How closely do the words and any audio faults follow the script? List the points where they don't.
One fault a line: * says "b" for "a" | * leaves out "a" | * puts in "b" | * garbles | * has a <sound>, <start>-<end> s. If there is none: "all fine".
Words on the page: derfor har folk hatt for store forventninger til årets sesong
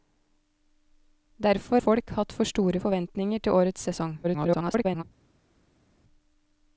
* leaves out "har"
* garbles